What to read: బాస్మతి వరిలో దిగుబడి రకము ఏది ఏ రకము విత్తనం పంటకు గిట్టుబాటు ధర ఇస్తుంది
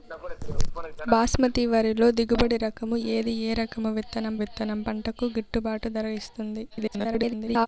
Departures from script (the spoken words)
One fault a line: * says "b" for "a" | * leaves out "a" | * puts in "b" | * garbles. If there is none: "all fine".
* puts in "విత్తనం"
* garbles